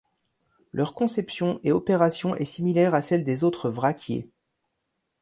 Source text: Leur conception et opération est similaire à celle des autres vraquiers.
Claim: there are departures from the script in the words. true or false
false